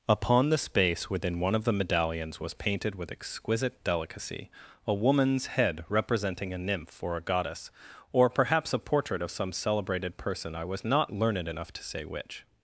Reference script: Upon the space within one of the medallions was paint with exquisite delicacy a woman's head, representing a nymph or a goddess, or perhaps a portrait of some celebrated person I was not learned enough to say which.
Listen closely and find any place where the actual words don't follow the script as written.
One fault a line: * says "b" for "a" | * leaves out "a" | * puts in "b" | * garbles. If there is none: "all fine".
* says "painted" for "paint"